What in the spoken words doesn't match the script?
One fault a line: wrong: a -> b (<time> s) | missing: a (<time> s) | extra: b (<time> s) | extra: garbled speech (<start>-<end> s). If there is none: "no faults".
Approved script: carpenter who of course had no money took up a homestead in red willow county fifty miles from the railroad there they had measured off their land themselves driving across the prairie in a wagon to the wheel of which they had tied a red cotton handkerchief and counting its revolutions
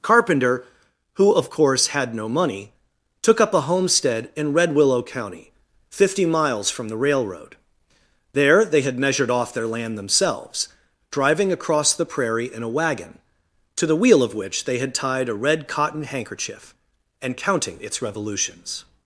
no faults